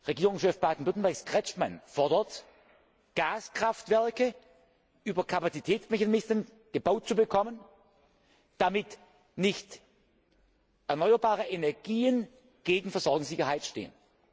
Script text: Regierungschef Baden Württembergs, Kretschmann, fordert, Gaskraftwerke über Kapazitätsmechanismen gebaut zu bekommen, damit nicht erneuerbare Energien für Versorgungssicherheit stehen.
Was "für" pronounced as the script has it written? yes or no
no